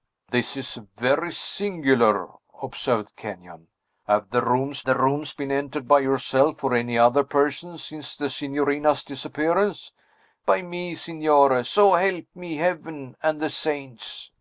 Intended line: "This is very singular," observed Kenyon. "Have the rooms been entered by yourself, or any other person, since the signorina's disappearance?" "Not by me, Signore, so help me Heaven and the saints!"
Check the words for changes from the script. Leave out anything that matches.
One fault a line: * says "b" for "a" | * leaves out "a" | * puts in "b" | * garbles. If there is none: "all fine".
* puts in "the rooms"
* leaves out "Not"